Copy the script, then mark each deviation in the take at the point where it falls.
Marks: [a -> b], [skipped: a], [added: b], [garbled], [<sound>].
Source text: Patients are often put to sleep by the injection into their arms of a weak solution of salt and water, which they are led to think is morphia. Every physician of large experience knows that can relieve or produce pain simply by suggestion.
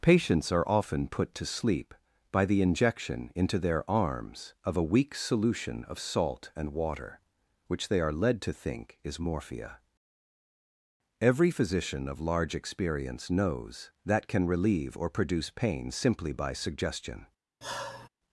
Patients are often put to sleep by the injection into their arms of a weak solution of salt and water, which they are led to think is morphia. Every physician of large experience knows that can relieve or produce pain simply by suggestion. [sigh]